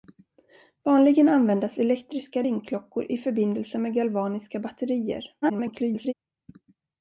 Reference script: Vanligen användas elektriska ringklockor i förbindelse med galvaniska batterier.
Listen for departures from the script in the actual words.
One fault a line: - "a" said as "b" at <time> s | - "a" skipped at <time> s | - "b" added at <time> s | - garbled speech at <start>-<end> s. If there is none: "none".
- garbled speech at 5.4-6.1 s